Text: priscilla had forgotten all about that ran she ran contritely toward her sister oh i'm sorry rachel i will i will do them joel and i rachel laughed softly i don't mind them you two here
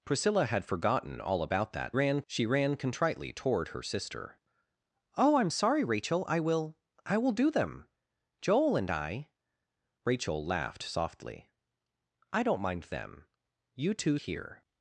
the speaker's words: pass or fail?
pass